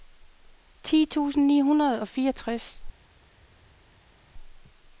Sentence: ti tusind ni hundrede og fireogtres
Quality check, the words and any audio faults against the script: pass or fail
pass